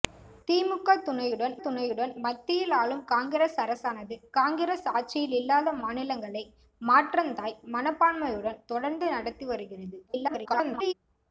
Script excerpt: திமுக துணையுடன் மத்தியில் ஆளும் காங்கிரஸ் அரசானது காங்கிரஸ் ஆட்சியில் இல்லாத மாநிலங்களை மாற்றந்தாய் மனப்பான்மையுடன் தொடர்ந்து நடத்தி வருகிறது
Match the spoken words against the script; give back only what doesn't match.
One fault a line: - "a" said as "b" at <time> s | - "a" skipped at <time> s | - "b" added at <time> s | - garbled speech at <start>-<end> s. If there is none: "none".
- "துணையுடன்" added at 1.6 s
- garbled speech at 10.1-10.9 s